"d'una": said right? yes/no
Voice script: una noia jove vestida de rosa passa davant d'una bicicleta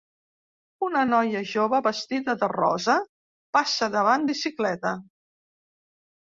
no